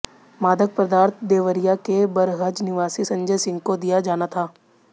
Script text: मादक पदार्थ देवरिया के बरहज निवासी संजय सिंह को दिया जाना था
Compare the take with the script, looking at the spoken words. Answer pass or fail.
pass